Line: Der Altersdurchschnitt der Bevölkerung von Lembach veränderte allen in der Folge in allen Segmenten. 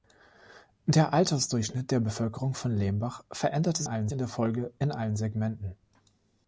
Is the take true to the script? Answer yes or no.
yes